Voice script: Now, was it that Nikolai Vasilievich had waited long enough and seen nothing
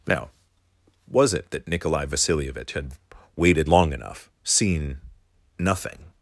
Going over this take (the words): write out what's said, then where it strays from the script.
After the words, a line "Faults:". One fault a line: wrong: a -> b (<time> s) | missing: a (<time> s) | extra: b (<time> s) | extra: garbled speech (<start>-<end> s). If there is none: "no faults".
Now, was it that Nikolai Vasilievich had waited long enough seen nothing
Faults:
missing: and (4.3 s)